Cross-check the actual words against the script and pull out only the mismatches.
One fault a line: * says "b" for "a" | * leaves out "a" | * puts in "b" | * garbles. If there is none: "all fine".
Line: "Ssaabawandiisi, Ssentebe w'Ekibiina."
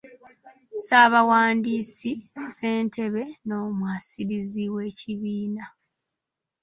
* puts in "n'Omwasirizi"